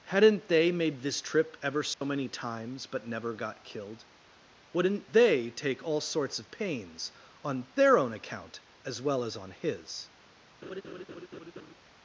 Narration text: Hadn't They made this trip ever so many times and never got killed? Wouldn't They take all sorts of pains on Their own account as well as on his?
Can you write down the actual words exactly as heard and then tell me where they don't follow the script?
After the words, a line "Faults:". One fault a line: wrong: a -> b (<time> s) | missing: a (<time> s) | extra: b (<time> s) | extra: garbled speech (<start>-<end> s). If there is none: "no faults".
Hadn't They made this trip ever so many times but never got killed? Wouldn't They take all sorts of pains on Their own account as well as on his?
Faults:
wrong: and -> but (2.9 s)